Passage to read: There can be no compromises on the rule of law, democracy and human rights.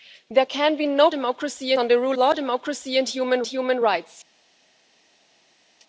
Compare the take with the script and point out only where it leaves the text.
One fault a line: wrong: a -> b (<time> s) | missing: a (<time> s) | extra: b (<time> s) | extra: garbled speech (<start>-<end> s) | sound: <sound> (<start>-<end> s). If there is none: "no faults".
wrong: compromises -> democracy (1.1 s)
missing: of (2.2 s)
extra: human (3.5 s)